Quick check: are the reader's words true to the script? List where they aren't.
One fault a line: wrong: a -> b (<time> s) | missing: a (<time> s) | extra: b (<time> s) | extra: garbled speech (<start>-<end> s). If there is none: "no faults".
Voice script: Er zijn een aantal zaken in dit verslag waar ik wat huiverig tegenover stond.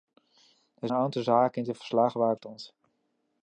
missing: zijn (0.9 s)
missing: wat huiverig tegenover (2.4 s)